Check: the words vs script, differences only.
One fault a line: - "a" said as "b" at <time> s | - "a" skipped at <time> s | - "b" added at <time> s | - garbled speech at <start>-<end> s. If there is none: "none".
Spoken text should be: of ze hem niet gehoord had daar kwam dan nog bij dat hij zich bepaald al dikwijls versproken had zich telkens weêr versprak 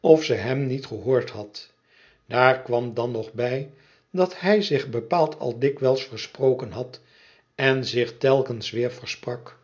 - "en" added at 7.5 s